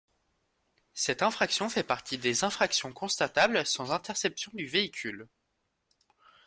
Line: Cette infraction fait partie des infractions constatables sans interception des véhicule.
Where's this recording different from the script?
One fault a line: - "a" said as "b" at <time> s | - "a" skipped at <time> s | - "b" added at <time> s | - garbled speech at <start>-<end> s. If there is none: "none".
- "des" said as "du" at 4.5 s